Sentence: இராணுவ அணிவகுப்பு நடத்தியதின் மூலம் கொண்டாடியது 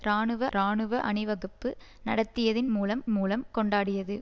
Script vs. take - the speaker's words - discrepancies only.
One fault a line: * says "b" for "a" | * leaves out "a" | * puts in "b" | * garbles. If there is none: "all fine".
* puts in "இராணுவ"
* puts in "மூலம்"